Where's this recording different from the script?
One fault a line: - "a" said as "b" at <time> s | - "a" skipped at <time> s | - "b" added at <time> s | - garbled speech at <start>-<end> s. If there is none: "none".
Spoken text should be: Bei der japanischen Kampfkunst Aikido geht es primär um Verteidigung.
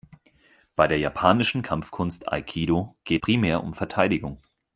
- "es" skipped at 3.2 s